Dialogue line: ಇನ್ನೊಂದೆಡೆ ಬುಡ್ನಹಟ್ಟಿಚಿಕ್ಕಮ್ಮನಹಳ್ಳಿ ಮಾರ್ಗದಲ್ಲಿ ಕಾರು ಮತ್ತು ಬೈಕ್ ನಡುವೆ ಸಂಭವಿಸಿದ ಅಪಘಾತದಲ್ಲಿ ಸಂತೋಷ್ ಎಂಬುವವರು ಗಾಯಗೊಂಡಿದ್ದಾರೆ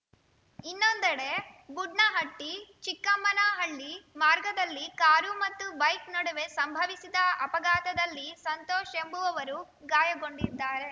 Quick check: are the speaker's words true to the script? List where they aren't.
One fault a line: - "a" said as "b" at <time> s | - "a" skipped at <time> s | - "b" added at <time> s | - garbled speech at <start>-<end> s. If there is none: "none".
none